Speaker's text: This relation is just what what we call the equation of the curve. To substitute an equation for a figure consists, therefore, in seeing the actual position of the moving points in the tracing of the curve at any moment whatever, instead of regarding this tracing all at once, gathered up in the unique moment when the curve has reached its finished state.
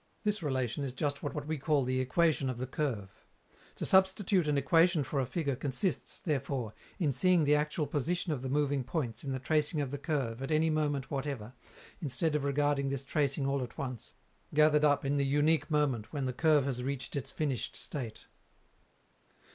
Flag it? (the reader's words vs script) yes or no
no